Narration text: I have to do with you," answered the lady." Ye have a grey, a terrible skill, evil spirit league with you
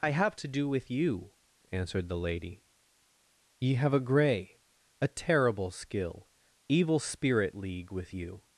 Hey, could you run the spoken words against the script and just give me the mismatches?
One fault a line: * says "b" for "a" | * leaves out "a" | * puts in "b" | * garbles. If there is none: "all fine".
all fine